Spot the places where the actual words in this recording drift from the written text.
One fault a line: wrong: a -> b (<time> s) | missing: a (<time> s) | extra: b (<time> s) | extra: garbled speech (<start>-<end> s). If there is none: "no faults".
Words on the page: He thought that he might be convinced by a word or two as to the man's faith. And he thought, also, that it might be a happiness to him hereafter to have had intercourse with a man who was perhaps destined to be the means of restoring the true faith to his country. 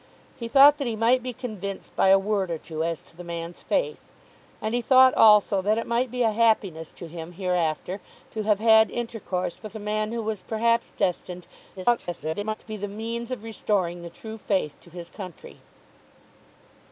extra: garbled speech (11.8-12.5 s)